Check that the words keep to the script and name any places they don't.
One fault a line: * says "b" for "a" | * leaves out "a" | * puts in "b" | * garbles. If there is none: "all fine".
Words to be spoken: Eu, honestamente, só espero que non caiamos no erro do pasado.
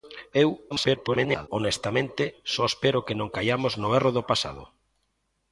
* garbles